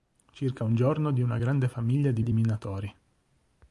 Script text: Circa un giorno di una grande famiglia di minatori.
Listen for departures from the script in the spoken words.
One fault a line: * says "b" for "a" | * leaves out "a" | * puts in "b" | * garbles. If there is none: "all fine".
* puts in "di"